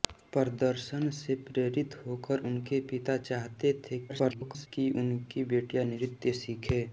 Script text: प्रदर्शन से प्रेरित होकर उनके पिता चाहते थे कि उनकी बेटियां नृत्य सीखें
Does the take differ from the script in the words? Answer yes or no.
yes